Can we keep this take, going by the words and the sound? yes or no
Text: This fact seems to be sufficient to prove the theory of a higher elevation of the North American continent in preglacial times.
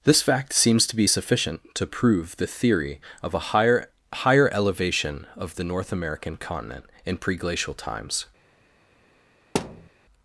no